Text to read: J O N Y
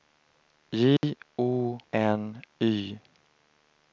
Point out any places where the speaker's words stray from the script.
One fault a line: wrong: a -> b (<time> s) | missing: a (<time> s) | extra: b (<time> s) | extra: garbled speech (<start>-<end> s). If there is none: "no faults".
no faults